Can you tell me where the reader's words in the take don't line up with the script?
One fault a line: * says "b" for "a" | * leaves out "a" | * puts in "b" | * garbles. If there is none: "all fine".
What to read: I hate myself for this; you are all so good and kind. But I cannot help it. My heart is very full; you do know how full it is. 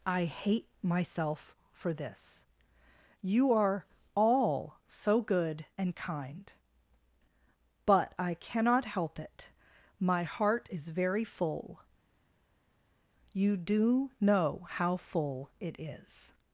all fine